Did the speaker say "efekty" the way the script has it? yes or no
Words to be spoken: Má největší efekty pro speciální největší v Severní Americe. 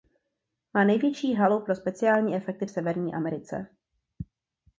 no